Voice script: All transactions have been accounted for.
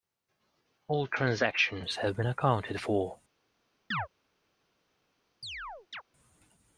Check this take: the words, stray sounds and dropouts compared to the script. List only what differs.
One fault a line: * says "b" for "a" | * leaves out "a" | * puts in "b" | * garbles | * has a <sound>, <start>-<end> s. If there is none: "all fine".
* has a chirp, 3.9-4.1 s
* has a chirp, 5.4-6.0 s